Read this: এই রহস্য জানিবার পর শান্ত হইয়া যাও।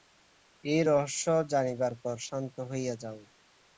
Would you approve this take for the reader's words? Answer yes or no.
yes